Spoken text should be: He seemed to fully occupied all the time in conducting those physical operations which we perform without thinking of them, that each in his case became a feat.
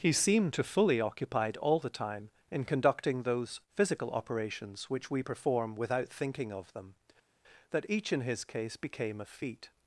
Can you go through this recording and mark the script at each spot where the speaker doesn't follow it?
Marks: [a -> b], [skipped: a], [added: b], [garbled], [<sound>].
He seemed to fully occupied all the time in conducting those physical operations which we perform without thinking of them, that each in his case became a feat.